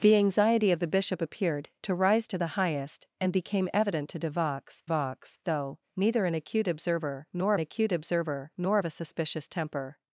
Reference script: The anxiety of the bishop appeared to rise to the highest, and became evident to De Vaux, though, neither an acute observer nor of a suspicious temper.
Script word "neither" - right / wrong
right